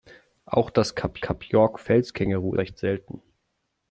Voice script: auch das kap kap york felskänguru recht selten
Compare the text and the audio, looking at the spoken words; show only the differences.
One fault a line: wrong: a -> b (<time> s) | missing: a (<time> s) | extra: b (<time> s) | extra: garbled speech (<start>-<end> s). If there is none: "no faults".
no faults